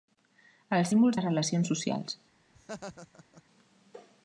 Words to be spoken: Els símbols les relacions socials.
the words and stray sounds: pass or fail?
fail